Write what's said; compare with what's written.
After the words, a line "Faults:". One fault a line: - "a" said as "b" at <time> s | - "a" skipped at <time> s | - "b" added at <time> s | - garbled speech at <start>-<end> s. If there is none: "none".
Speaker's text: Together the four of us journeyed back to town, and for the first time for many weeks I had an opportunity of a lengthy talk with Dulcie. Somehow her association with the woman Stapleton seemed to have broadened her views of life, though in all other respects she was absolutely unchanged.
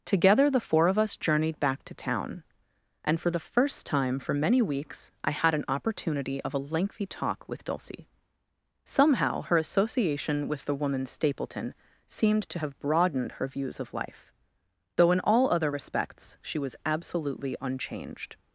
Together the four of us journeyed back to town, and for the first time for many weeks I had an opportunity of a lengthy talk with Dulcie. Somehow her association with the woman Stapleton seemed to have broadened her views of life, though in all other respects she was absolutely unchanged.
Faults:
none